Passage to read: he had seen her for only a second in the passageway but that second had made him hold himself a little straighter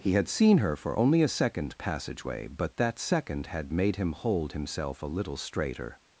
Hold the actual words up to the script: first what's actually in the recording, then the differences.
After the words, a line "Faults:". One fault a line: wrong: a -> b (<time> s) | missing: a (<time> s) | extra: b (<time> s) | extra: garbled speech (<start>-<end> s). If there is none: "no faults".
he had seen her for only a second passageway but that second had made him hold himself a little straighter
Faults:
missing: in the (1.8 s)